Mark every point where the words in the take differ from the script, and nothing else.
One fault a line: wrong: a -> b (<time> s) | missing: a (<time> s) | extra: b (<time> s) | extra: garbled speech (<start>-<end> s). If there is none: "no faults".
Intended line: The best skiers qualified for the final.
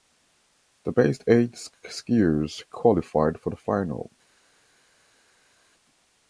extra: eight (1.3 s)